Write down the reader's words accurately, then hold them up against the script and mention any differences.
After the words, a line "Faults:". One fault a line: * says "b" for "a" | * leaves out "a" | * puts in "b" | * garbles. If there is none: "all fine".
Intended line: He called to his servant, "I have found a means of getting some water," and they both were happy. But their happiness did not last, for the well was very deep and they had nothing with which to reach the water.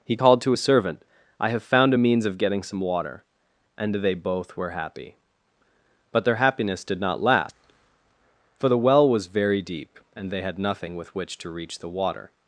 He called to his servant, "I have found a means of getting some water," and they both were happy. But their happiness did not last, for the well was very deep and they had nothing with which to reach the water.
Faults:
all fine